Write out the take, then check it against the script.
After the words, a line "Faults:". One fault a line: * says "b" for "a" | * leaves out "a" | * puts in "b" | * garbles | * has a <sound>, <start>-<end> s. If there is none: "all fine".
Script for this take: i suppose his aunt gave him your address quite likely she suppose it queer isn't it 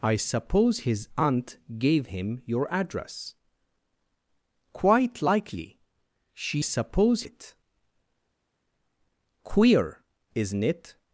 i suppose his aunt gave him your address quite likely she suppose it queer isn't it
Faults:
all fine